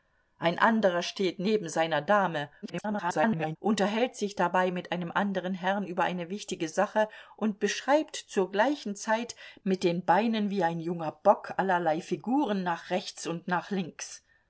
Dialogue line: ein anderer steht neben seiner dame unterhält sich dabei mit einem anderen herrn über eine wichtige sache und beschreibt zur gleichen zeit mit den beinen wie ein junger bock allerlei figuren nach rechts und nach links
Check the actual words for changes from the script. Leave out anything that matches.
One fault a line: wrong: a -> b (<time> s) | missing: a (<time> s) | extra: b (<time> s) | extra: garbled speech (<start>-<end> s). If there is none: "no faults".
extra: garbled speech (2.6-3.6 s)